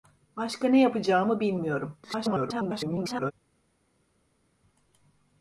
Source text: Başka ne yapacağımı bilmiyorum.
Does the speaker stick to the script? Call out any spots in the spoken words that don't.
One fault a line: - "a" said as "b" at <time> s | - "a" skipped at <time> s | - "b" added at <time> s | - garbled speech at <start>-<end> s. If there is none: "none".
- garbled speech at 2.0-3.3 s